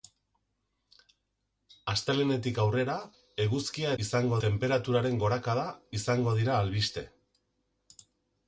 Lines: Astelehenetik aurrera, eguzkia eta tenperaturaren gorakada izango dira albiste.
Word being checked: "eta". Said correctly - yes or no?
no